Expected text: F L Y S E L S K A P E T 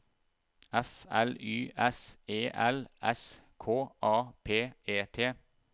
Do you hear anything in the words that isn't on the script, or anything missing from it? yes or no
no